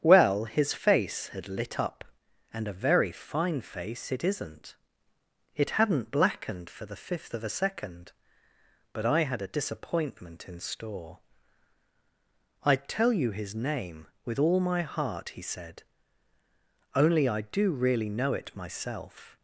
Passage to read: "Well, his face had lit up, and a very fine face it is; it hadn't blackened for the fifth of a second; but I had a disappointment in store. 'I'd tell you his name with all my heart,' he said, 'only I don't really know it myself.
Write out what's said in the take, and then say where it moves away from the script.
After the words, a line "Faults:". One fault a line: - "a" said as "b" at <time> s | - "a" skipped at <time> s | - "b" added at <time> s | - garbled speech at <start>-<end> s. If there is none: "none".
"Well, his face had lit up, and a very fine face it isn't; it hadn't blackened for the fifth of a second; but I had a disappointment in store. 'I'd tell you his name with all my heart,' he said, 'only I do really know it myself.
Faults:
- "is" said as "isn't" at 4.2 s
- "don't" said as "do" at 17.4 s